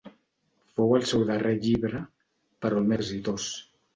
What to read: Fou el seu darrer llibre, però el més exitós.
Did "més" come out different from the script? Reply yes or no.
yes